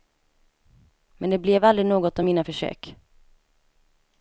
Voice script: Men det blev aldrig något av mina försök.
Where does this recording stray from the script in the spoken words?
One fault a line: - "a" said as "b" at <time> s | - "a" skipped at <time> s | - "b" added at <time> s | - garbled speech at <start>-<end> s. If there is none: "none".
none